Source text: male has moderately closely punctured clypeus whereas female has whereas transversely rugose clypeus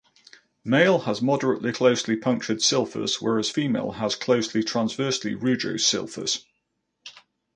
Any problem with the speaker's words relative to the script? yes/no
yes